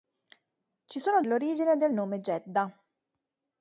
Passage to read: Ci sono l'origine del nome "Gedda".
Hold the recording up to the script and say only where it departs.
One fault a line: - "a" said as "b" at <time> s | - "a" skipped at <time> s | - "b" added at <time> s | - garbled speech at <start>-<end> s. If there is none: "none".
none